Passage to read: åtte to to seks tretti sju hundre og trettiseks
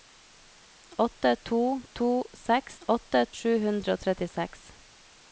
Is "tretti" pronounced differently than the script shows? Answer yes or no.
yes